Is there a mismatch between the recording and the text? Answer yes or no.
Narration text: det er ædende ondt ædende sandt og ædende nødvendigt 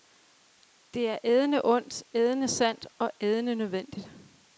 no